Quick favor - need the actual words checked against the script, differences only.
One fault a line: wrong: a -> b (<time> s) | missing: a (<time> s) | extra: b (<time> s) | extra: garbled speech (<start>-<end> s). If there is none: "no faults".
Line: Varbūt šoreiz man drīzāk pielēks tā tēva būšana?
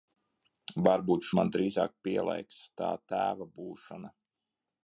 missing: šoreiz (1.3 s)